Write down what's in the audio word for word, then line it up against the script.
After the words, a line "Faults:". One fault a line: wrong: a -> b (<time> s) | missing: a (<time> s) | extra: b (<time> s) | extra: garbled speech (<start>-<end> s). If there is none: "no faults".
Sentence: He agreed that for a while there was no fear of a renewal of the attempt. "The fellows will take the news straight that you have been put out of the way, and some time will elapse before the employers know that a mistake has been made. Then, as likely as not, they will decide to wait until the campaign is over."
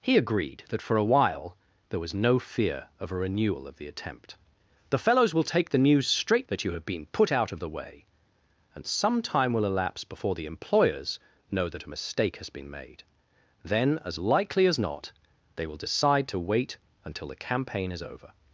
He agreed that for a while there was no fear of a renewal of the attempt. "The fellows will take the news straight that you have been put out of the way, and some time will elapse before the employers know that a mistake has been made. Then, as likely as not, they will decide to wait until the campaign is over."
Faults:
no faults